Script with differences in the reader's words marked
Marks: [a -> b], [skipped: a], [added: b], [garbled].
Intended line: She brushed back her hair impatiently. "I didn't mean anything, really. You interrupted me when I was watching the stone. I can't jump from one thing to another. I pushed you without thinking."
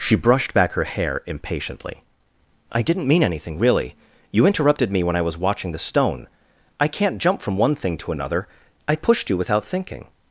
She brushed back her hair impatiently. "I didn't mean anything, really. You interrupted me when I was watching the stone. I can't jump from one thing to another. I pushed you without thinking."